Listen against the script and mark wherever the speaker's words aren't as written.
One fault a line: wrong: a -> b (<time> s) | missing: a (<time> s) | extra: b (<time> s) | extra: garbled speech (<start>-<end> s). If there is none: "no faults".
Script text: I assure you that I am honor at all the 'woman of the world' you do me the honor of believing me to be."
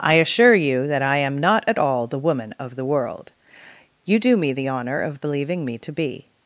wrong: honor -> not (1.4 s)